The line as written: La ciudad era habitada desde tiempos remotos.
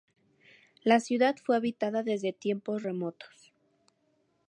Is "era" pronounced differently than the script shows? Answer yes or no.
yes